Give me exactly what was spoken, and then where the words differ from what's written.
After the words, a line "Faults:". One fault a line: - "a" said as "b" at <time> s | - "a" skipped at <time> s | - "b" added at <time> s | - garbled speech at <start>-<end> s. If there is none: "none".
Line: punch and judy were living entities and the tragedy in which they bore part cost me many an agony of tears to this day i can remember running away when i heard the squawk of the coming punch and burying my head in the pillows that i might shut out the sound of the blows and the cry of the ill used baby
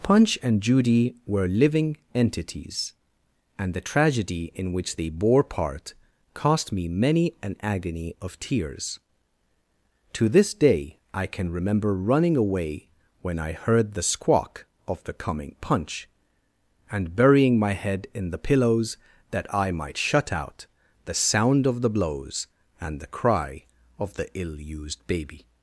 punch and judy were living entities and the tragedy in which they bore part cost me many an agony of tears to this day i can remember running away when i heard the squawk of the coming punch and burying my head in the pillows that i might shut out the sound of the blows and the cry of the ill used baby
Faults:
none